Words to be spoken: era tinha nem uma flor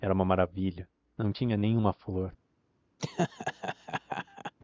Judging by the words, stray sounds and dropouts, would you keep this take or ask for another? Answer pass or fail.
fail